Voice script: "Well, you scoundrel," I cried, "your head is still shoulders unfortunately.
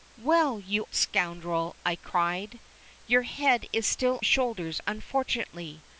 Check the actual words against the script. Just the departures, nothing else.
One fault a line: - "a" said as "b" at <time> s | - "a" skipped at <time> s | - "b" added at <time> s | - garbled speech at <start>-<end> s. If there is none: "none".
none